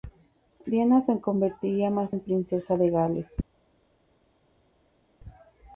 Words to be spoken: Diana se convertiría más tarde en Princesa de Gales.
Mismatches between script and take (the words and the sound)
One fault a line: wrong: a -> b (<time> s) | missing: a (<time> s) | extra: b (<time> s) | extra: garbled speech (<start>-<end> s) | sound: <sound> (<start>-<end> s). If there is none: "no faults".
missing: tarde (2.1 s)